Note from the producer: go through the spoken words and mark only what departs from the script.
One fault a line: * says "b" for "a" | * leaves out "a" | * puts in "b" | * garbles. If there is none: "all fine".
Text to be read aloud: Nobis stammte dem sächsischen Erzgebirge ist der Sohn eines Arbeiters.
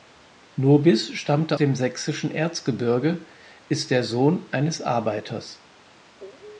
all fine